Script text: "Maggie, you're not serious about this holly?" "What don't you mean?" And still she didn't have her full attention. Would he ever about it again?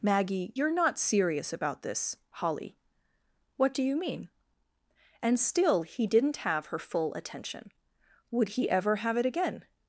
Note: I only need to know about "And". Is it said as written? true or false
true